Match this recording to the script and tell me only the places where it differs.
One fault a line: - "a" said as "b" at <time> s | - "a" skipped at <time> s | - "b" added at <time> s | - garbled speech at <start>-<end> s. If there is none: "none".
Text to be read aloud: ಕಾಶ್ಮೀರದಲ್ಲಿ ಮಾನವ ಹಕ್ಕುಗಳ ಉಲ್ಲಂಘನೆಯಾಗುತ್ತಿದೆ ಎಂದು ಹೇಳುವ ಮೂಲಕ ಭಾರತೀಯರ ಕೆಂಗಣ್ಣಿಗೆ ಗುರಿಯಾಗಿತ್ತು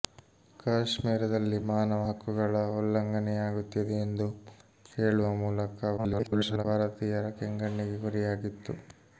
- garbled speech at 6.0-6.6 s